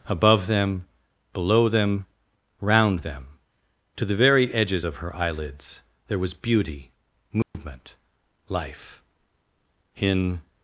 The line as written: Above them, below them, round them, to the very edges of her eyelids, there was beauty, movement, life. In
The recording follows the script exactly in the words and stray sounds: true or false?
false